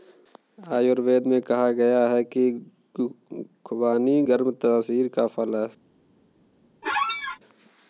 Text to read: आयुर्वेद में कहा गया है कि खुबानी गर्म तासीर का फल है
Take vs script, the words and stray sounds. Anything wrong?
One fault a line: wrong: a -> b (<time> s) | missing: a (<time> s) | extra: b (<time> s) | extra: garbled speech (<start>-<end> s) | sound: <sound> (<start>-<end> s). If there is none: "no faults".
sound: squeak (6.8-7.4 s)